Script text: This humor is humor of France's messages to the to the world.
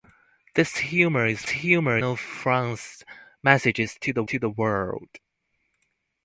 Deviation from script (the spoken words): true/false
false